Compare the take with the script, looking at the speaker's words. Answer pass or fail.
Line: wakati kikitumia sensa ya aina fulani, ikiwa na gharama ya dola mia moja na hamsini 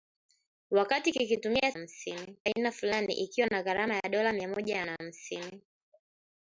fail